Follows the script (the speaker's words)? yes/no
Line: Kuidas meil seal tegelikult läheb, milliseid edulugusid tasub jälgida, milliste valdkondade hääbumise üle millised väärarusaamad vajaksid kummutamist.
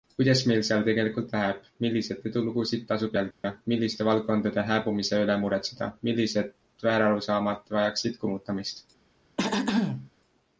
no